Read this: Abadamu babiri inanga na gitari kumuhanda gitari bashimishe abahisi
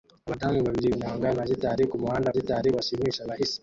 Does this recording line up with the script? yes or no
yes